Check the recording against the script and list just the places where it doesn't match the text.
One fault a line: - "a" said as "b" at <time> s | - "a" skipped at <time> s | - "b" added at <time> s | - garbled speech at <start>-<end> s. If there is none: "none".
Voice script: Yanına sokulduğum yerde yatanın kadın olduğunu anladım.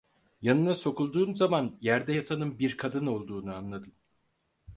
- "zaman" added at 1.4 s
- "bir" added at 2.6 s